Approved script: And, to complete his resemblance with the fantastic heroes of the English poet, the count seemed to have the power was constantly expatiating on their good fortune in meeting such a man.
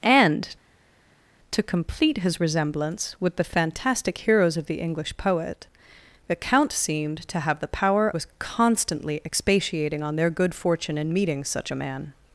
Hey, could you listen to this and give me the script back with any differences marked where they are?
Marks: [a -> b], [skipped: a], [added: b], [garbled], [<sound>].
And, to complete his resemblance with the fantastic heroes of the English poet, the count seemed to have the power was constantly expatiating on their good fortune in meeting such a man.